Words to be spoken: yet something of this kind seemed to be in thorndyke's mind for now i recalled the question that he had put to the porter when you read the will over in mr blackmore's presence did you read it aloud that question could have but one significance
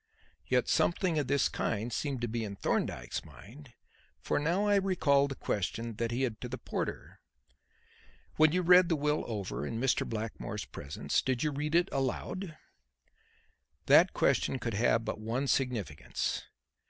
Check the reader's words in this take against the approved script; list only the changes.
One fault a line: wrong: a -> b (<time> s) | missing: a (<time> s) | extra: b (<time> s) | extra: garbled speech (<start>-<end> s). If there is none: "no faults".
missing: put (6.4 s)